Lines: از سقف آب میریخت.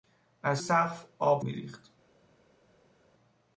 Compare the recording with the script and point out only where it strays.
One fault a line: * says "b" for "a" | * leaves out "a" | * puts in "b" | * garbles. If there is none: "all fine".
all fine